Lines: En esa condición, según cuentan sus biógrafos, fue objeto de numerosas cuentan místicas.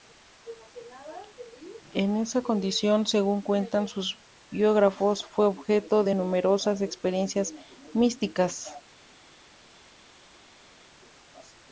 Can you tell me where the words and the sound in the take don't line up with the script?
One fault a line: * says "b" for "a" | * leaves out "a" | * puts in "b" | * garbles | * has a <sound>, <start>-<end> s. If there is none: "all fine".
* says "experiencias" for "cuentan"